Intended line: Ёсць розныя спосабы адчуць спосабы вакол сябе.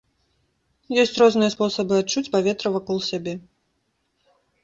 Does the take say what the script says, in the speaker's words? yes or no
no